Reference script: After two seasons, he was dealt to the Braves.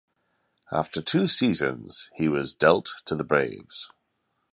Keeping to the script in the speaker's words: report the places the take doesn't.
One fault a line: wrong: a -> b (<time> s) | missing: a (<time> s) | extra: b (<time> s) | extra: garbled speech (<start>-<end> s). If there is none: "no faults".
no faults